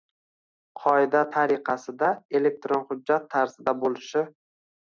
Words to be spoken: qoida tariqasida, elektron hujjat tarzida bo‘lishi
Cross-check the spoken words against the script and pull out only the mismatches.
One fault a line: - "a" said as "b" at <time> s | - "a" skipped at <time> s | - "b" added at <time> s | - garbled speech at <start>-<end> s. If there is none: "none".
none